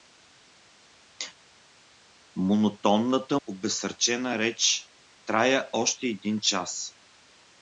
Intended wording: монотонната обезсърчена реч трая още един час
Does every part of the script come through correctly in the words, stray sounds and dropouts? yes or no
yes